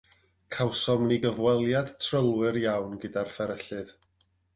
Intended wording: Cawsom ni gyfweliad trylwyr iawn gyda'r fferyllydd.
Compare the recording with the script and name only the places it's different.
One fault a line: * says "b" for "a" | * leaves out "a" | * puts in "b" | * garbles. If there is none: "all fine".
all fine